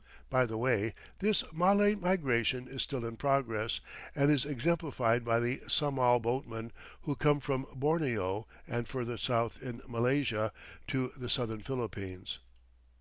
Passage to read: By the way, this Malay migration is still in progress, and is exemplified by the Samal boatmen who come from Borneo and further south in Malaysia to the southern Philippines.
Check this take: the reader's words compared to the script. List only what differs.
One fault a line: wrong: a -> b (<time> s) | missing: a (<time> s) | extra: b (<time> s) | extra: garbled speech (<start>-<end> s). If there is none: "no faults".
no faults